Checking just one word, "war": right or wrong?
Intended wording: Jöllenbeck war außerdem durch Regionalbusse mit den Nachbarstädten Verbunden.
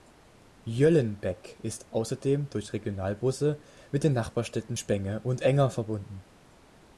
wrong